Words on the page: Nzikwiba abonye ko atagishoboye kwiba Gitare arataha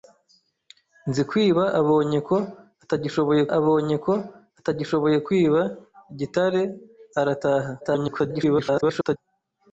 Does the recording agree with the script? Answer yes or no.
no